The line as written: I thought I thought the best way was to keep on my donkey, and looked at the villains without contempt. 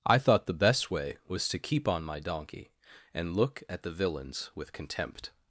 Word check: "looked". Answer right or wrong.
wrong